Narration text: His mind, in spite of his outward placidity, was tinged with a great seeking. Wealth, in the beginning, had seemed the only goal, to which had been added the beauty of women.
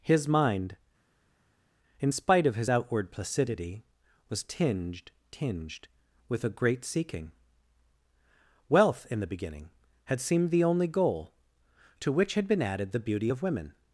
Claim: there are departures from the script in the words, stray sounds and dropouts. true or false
true